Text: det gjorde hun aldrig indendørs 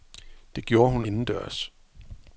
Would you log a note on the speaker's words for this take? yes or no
yes